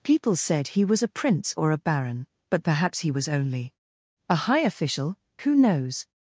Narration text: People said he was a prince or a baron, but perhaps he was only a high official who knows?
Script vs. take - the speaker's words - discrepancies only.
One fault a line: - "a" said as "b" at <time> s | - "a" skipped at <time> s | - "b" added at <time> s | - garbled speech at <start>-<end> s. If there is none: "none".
none